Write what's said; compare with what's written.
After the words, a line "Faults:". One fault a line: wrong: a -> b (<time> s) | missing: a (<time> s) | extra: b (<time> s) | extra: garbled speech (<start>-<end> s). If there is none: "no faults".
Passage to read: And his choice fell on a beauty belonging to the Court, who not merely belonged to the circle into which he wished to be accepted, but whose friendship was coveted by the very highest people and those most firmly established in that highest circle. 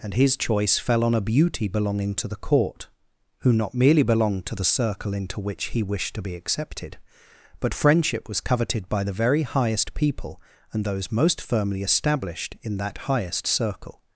And his choice fell on a beauty belonging to the Court, who not merely belonged to the circle into which he wished to be accepted, but friendship was coveted by the very highest people and those most firmly established in that highest circle.
Faults:
missing: whose (7.8 s)